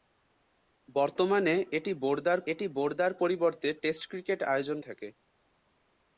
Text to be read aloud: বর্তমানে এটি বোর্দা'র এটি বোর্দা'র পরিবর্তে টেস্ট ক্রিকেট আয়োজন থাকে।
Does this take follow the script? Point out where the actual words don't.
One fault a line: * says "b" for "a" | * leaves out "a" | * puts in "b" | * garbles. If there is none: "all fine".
all fine